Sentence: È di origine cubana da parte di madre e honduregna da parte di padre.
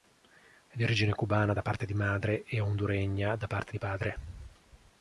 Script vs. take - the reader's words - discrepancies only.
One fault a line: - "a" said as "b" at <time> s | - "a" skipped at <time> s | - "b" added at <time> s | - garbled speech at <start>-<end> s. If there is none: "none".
none